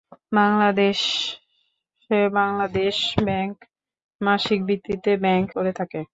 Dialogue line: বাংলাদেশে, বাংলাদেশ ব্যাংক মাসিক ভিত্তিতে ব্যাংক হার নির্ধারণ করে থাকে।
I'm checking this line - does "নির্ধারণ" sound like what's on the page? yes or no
no